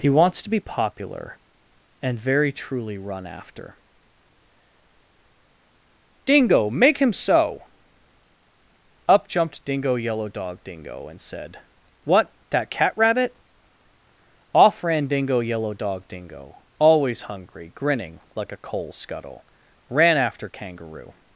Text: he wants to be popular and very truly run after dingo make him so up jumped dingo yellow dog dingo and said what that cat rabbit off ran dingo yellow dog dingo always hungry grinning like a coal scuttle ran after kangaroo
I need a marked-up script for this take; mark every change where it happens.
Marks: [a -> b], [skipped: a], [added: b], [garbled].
he wants to be popular and very truly run after dingo make him so up jumped dingo yellow dog dingo and said what that cat rabbit off ran dingo yellow dog dingo always hungry grinning like a coal scuttle ran after kangaroo